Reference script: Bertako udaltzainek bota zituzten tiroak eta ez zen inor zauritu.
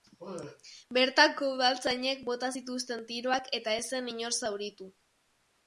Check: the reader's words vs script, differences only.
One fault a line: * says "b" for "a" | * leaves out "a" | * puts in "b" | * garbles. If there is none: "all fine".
all fine